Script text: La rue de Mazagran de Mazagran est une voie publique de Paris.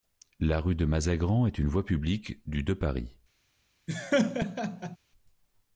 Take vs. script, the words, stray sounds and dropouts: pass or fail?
fail